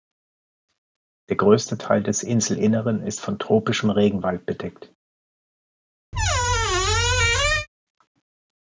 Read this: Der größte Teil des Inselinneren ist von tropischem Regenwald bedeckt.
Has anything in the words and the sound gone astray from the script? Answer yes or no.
yes